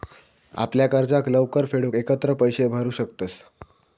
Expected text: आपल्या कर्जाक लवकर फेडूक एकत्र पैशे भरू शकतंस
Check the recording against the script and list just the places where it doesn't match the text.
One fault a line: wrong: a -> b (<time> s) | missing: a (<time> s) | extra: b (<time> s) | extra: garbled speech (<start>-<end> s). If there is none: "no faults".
no faults